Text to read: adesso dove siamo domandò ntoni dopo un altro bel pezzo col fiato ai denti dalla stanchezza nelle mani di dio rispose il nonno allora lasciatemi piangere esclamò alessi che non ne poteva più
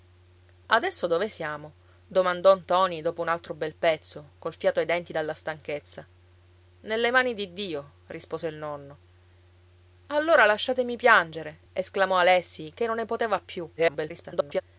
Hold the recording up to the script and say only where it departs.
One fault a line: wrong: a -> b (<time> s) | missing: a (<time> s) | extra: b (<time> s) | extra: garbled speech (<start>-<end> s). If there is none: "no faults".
extra: garbled speech (13.8-14.6 s)